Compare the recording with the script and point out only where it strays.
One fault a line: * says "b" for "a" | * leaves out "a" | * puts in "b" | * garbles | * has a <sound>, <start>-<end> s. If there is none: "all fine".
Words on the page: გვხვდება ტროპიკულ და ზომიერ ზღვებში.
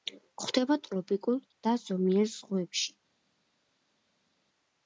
all fine